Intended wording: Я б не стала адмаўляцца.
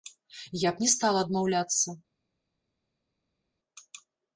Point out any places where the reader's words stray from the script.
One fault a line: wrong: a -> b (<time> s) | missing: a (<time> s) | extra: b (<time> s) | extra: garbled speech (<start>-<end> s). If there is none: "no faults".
no faults